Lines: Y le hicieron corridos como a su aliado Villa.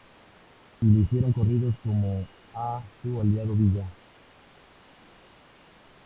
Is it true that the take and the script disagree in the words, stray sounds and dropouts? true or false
false